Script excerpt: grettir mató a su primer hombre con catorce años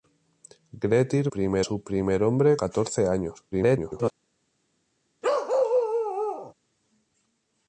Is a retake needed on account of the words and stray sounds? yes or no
yes